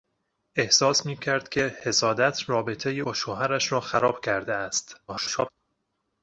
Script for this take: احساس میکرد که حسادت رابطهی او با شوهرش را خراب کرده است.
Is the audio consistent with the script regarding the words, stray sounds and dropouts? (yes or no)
no